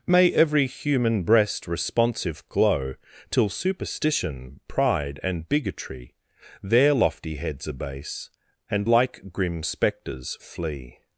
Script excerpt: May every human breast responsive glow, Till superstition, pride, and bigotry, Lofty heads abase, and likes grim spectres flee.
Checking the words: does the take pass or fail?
fail